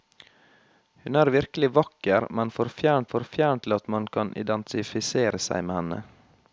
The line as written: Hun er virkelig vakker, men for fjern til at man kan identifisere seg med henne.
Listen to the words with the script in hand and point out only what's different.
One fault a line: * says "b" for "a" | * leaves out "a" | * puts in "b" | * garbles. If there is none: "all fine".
* puts in "for fjern"